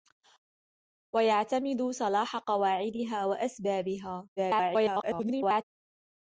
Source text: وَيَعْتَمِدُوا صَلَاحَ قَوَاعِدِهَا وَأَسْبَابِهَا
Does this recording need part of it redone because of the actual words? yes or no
yes